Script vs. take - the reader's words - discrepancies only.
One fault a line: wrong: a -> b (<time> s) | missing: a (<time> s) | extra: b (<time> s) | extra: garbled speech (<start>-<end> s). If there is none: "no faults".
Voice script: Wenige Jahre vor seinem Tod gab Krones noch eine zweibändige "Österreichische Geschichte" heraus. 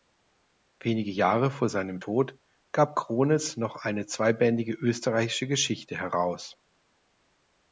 no faults